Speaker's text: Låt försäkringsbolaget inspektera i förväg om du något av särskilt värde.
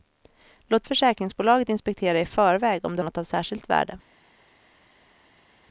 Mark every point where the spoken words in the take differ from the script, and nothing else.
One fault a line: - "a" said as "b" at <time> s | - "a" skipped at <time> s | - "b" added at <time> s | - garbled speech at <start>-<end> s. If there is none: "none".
none